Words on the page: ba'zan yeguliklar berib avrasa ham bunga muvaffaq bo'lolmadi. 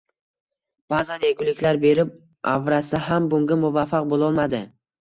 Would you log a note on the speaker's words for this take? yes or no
no